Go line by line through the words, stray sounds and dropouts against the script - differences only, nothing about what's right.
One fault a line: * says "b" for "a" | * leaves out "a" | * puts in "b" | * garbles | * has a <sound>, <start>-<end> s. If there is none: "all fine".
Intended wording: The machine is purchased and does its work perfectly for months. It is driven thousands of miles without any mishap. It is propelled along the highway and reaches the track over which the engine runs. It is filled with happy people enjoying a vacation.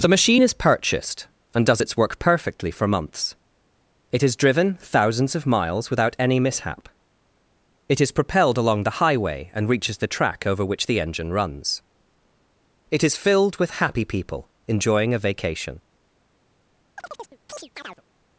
* has a chirp, 17.0-18.0 s